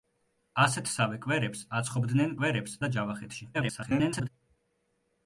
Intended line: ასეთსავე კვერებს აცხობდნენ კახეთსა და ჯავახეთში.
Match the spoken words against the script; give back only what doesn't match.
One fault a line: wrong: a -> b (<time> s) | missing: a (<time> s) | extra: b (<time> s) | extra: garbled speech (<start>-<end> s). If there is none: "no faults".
wrong: კახეთსა -> კვერებს (2.4 s)
extra: garbled speech (3.5-4.3 s)